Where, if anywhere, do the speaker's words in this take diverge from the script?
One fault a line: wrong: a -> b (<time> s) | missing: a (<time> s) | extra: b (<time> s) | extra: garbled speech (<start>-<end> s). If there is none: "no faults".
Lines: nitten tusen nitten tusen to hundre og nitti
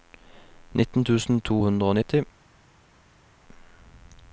missing: nitten tusen (1.4 s)